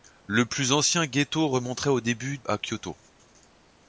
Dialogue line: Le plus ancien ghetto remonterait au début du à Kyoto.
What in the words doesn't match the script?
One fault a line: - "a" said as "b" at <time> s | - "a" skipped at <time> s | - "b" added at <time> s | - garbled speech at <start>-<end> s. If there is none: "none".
- "du" skipped at 2.4 s